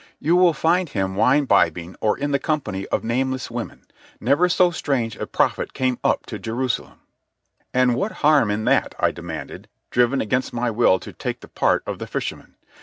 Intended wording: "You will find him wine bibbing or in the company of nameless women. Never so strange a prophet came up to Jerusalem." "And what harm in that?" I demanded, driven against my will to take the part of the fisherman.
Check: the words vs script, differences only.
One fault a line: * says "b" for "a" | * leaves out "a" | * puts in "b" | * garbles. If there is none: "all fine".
all fine